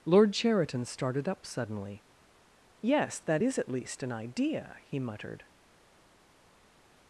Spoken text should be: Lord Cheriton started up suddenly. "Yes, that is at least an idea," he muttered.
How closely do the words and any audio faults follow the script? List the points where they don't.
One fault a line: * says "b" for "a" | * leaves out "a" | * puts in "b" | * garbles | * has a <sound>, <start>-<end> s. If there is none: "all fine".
all fine